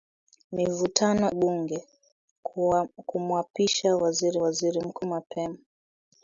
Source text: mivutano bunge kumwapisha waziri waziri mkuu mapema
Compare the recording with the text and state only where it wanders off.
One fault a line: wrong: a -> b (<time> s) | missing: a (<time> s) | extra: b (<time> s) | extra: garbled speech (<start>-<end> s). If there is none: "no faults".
no faults